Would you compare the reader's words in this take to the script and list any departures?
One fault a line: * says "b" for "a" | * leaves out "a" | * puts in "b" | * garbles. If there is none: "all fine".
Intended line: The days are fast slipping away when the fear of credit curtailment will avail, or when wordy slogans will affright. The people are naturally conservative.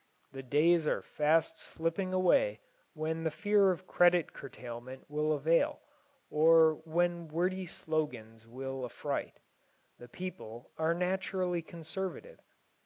all fine